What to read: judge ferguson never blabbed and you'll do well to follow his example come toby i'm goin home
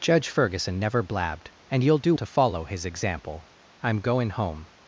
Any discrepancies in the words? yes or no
yes